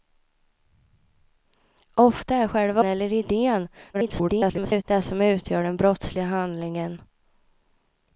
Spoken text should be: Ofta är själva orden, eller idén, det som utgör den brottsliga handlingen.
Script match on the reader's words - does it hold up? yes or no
no